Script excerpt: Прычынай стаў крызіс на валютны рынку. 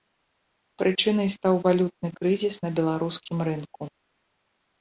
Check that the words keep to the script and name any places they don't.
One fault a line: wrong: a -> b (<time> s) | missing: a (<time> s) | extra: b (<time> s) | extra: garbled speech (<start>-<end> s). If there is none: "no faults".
extra: валютны (1.7 s)
wrong: валютны -> беларускім (2.8 s)